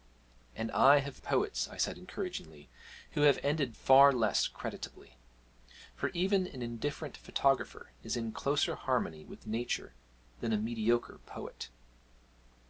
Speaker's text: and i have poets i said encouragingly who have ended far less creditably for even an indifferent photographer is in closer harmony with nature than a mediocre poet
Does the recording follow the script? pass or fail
pass